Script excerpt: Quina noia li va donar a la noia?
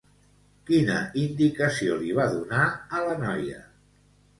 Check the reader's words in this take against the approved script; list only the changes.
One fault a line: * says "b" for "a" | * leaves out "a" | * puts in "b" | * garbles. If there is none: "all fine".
* says "indicació" for "noia"